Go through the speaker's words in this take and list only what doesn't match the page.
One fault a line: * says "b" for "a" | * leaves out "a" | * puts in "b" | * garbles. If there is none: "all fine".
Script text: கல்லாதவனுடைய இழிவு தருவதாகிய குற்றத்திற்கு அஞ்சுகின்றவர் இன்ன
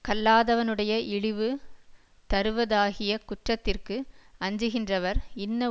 all fine